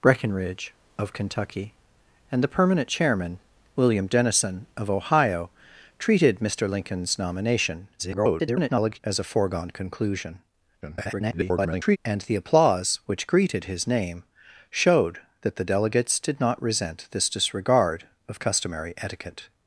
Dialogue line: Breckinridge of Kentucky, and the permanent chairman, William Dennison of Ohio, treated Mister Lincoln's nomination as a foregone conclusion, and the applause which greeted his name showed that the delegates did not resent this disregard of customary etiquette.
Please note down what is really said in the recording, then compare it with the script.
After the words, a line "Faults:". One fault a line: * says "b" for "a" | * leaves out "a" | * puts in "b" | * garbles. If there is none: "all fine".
Breckinridge of Kentucky, and the permanent chairman, William Dennison of Ohio, treated Mister Lincoln's nomination [garbled] as a foregone conclusion, [garbled] and the applause which greeted his name showed that the delegates did not resent this disregard of customary etiquette.
Faults:
* garbles
* garbles